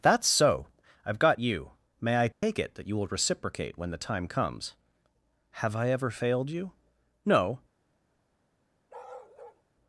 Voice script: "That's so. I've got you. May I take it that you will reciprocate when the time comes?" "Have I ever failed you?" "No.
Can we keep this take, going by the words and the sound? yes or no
no